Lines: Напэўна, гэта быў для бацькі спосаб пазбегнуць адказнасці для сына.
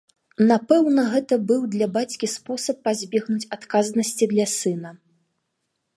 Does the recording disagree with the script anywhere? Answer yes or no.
no